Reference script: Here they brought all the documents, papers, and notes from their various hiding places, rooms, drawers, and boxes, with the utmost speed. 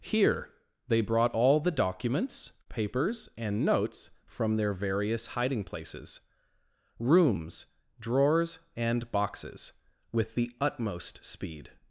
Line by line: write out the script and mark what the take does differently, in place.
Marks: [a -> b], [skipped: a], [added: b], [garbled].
Here they brought all the documents, papers, and notes from their various hiding places, rooms, drawers, and boxes, with the utmost speed.